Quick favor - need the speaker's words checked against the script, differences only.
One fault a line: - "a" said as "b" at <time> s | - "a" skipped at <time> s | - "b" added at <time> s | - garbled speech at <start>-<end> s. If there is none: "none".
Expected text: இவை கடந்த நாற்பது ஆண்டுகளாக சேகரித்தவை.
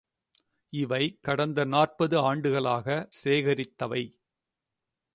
none